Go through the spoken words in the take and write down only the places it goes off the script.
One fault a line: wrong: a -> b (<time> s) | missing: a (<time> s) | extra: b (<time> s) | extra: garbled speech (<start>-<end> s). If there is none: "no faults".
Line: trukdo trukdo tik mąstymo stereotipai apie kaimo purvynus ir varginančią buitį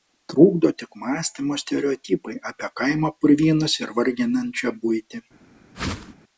missing: trukdo (0.7 s)